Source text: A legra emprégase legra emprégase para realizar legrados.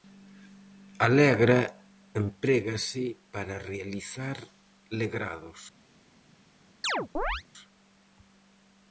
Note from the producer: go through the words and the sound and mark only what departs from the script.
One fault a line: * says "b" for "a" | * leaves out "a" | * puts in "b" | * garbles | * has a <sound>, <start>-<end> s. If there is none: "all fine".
* leaves out "legra emprégase"
* has a chirp, 6.8-7.4 s